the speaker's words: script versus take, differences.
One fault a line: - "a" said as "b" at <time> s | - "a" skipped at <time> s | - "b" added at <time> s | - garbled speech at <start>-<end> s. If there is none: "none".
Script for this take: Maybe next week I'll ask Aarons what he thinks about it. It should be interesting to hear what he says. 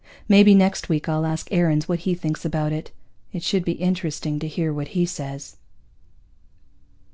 none